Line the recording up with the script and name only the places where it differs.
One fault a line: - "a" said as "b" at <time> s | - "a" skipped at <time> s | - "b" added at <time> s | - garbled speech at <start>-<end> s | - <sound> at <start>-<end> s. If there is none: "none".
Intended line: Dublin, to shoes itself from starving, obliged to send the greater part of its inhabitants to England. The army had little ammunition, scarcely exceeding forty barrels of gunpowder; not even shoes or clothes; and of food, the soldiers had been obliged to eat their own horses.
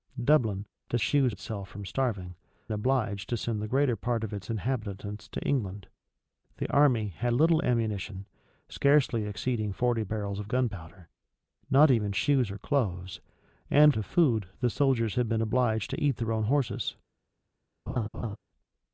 - laugh at 17.9-18.4 s